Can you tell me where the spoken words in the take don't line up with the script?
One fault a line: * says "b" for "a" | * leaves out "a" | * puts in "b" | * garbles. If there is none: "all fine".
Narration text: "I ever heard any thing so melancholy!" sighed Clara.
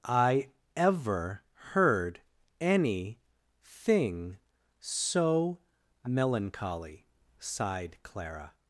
all fine